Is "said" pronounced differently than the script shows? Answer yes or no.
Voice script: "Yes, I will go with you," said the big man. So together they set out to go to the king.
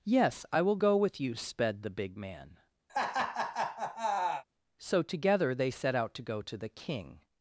yes